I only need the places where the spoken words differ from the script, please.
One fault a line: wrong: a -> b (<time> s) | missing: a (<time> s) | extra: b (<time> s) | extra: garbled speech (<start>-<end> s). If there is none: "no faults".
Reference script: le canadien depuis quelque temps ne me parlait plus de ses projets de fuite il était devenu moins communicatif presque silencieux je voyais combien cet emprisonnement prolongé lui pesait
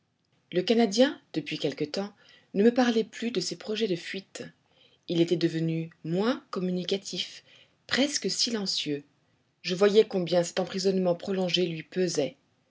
no faults